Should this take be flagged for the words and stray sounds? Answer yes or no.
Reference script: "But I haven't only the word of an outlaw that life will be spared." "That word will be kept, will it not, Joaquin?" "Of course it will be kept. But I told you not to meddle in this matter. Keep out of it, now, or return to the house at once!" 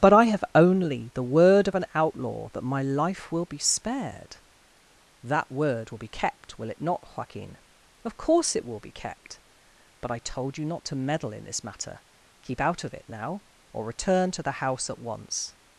yes